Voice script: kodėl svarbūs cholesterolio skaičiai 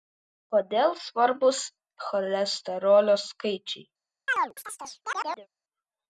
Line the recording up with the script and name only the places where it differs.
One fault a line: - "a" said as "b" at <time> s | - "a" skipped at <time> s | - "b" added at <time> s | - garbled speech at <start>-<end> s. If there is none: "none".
none